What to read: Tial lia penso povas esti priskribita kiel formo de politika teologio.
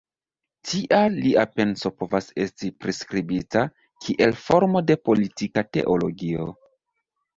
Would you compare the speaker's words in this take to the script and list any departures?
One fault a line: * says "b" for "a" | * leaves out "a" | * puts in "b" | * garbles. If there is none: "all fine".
all fine